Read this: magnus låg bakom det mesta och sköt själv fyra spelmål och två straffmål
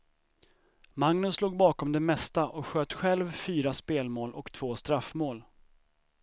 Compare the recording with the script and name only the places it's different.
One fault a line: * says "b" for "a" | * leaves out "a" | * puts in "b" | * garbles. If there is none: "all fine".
all fine